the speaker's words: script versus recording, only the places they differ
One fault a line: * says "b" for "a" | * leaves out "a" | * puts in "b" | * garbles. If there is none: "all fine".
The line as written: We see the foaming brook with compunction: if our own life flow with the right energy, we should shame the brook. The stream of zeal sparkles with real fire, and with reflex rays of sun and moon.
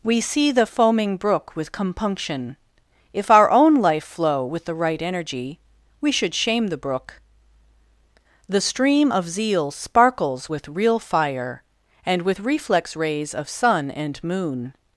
all fine